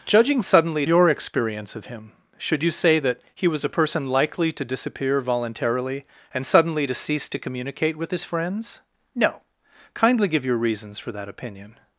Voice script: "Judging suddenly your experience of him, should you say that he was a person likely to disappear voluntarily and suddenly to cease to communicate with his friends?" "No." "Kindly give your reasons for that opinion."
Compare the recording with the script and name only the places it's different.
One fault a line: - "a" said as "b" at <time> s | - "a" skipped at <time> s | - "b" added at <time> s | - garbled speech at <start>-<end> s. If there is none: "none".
none